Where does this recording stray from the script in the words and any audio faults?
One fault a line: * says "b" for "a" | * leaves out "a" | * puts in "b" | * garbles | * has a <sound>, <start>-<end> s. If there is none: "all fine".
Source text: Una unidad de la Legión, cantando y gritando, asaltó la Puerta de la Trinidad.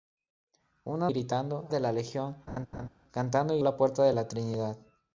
* says "gritando" for "unidad"
* has a laugh, 2.5-2.9 s
* leaves out "gritando asaltó"